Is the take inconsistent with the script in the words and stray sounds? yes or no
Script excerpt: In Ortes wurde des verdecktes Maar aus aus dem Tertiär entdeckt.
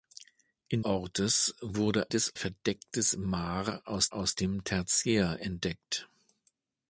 no